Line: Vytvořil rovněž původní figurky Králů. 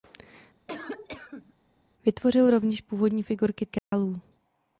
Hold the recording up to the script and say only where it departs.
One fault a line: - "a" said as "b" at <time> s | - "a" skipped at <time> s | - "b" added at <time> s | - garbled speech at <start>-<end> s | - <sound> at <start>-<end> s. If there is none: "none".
- cough at 0.7-1.5 s
- dropout at 3.8-3.9 s